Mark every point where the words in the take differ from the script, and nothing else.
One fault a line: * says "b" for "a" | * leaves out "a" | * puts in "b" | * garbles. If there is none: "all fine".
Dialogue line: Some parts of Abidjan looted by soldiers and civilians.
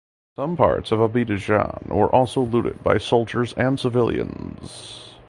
* puts in "were also"